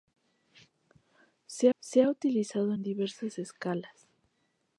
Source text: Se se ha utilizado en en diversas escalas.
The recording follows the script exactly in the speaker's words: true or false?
true